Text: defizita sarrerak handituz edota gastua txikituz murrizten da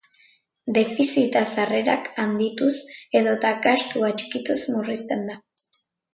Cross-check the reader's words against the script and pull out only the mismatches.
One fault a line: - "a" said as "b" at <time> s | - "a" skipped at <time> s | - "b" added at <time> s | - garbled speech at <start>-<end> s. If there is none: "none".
none